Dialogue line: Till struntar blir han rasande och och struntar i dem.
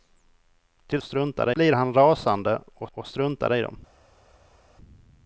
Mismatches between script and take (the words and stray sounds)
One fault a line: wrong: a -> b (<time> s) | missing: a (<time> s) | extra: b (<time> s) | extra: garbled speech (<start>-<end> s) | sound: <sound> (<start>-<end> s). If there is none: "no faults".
no faults